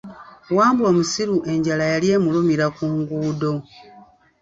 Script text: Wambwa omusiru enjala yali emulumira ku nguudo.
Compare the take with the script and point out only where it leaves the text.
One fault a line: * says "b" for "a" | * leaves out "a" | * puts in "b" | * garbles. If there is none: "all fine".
all fine